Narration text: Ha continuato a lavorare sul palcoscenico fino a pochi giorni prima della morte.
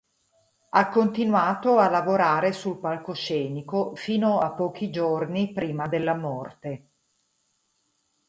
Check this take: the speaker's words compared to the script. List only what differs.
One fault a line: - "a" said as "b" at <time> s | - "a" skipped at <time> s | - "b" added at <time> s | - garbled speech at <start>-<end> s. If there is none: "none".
none